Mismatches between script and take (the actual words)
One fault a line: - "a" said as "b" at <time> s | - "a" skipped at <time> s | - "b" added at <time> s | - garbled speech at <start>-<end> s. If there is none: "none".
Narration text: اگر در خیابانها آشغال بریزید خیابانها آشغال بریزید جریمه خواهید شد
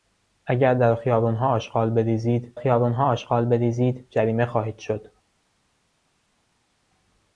none